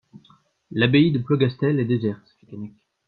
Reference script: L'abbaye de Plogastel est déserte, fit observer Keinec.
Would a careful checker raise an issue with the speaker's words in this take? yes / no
yes